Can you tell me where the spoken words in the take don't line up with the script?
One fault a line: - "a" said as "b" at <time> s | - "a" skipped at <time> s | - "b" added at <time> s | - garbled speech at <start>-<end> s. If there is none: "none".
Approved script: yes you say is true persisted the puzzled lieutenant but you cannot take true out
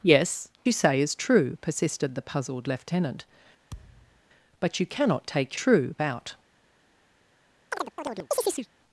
none